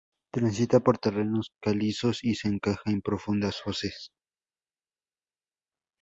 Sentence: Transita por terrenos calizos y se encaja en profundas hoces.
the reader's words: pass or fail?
pass